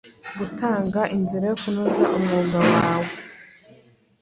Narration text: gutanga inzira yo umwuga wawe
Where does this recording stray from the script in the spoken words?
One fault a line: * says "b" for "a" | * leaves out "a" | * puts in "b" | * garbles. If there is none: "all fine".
* puts in "kunoza"